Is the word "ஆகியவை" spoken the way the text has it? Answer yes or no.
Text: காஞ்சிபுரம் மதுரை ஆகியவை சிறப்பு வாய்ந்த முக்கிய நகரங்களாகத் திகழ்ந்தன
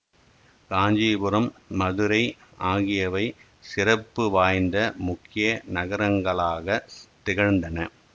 yes